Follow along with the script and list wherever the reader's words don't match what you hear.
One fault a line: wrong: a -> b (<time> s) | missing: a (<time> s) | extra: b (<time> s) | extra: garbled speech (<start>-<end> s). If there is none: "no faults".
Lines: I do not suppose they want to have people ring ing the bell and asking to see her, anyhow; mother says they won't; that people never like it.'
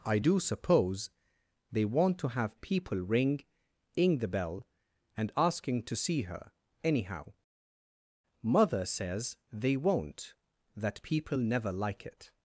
missing: not (0.4 s)